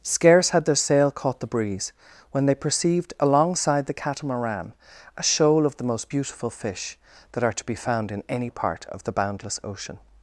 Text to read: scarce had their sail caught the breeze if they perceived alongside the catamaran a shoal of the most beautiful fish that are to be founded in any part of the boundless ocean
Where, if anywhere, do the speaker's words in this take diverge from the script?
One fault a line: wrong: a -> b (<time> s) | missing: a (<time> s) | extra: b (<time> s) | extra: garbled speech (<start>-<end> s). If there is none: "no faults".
wrong: if -> when (2.3 s)
wrong: founded -> found (7.7 s)